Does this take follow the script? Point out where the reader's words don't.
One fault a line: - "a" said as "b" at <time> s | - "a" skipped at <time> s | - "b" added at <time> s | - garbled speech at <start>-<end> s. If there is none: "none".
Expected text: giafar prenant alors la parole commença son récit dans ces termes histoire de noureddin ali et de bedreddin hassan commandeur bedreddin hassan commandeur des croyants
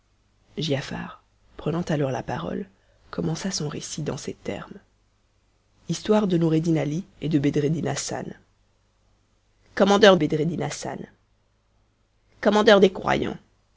none